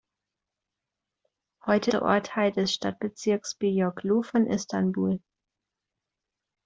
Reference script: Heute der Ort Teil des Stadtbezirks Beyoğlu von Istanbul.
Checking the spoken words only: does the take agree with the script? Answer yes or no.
yes